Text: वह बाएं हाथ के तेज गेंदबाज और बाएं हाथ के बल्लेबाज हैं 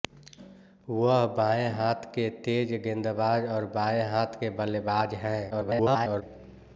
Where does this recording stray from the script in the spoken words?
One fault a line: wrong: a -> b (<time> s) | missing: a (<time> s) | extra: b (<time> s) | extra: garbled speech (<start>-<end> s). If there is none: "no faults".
extra: garbled speech (5.5-6.2 s)